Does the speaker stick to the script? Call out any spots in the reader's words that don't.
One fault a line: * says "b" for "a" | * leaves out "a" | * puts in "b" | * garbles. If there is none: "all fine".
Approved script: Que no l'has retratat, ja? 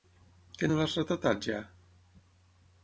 all fine